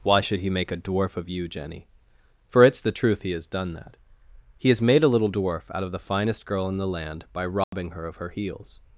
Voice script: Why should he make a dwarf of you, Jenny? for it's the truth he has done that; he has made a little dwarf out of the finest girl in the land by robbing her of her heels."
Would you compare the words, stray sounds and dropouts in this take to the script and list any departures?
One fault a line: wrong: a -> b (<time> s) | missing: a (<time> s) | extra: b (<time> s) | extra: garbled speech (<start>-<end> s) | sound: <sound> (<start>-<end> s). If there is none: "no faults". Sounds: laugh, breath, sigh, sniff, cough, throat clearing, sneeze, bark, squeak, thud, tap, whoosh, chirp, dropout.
sound: dropout (7.6-7.7 s)